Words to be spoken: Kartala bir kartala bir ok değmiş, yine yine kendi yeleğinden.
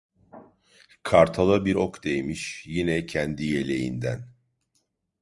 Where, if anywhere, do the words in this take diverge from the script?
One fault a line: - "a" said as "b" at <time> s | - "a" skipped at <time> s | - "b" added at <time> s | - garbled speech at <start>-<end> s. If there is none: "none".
- "kartala bir" skipped at 1.8 s
- "yine" skipped at 3.0 s